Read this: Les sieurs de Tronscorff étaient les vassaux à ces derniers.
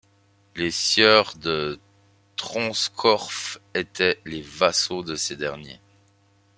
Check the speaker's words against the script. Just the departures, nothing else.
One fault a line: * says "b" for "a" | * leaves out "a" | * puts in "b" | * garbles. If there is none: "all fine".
* says "de" for "à"